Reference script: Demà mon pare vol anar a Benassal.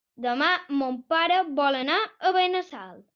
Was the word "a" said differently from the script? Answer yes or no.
no